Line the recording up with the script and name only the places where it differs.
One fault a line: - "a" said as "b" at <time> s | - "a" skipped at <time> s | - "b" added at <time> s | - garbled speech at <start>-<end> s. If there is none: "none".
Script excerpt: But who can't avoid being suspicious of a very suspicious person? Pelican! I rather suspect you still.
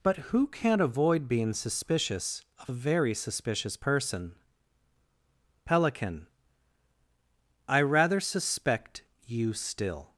none